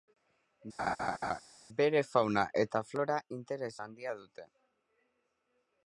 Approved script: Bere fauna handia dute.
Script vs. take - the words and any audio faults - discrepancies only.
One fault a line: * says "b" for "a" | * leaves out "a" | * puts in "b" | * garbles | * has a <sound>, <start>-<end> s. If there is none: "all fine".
* has a laugh, 0.8-1.4 s
* puts in "eta flora interes"